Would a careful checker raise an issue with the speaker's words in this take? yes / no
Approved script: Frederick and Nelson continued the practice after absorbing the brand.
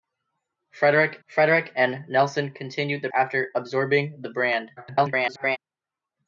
yes